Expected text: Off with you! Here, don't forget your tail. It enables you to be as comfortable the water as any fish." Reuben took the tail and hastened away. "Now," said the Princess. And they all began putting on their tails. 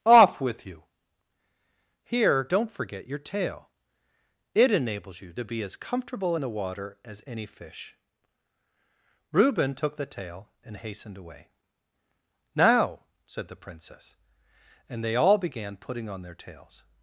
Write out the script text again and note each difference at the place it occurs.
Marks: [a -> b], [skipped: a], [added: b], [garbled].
Off with you! Here, don't forget your tail. It enables you to be as comfortable the water as any fish." Reuben took the tail and hastened away. "Now," said the Princess. And they all began putting on their tails.